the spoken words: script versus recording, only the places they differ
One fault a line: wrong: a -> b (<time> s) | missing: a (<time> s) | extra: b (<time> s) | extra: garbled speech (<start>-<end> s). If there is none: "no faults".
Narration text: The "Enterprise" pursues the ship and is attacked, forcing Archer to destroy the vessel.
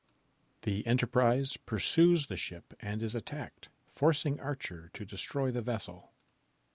no faults